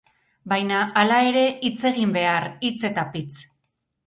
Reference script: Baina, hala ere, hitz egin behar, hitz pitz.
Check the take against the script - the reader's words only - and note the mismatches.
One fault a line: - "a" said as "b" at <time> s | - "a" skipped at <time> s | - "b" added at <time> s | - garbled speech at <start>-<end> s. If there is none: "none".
- "eta" added at 2.9 s